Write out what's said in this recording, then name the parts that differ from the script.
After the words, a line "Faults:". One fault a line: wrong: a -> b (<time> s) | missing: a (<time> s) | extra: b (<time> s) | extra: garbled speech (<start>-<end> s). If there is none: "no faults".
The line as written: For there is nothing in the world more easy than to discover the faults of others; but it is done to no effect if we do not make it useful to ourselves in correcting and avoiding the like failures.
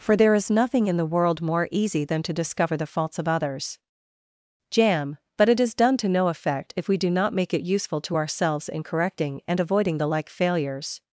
For there is nothing in the world more easy than to discover the faults of others; jam but it is done to no effect if we do not make it useful to ourselves in correcting and avoiding the like failures.
Faults:
extra: jam (4.7 s)